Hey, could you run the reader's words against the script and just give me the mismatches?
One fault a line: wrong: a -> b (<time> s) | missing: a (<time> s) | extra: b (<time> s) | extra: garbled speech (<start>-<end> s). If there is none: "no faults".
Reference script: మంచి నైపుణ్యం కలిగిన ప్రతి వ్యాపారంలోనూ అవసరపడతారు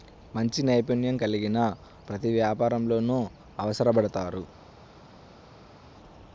no faults